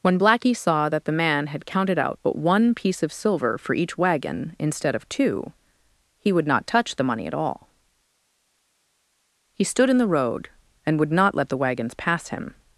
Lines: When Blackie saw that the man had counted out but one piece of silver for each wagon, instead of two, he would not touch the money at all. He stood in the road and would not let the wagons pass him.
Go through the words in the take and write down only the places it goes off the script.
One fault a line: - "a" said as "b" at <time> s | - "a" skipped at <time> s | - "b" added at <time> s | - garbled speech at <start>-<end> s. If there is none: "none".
none